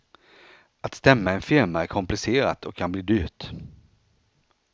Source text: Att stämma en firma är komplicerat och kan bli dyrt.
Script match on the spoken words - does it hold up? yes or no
yes